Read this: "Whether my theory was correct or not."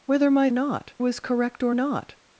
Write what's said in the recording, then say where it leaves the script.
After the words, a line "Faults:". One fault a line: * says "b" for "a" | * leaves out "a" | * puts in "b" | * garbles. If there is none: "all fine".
"Whether my not was correct or not."
Faults:
* says "not" for "theory"